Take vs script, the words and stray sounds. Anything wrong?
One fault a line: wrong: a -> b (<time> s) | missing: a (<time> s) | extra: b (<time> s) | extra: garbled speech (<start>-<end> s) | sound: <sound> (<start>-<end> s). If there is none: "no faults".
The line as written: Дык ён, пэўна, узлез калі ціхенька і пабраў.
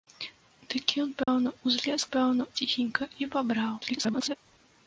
sound: dropout (1.2-1.3 s)
wrong: калі -> пэўна (2.1 s)
extra: garbled speech (3.8-4.4 s)